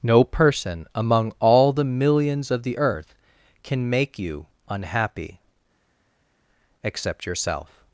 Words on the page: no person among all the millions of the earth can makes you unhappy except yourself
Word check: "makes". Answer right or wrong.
wrong